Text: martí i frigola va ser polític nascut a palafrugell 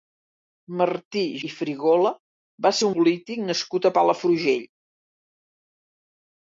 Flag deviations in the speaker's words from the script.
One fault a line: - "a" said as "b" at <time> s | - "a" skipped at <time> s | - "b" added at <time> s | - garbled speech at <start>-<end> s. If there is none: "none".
none